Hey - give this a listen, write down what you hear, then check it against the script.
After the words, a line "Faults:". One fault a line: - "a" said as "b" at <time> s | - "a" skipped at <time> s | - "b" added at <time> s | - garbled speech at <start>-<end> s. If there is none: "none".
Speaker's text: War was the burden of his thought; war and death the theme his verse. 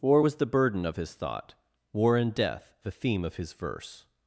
War was the burden of his thought; war and death the theme of his verse.
Faults:
- "of" added at 3.2 s